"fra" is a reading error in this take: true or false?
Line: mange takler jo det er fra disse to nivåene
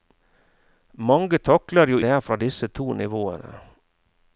false